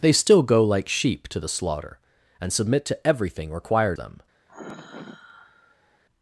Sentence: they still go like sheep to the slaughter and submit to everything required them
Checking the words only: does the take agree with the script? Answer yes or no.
yes